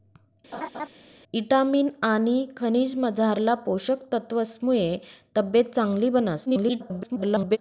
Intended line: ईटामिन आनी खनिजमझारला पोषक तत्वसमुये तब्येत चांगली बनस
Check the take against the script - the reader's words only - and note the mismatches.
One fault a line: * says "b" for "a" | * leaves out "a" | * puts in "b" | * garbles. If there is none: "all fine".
* garbles